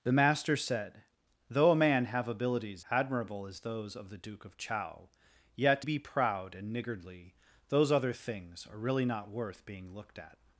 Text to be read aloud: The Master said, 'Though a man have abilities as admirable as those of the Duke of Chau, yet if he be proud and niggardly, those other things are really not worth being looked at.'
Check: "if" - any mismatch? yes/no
yes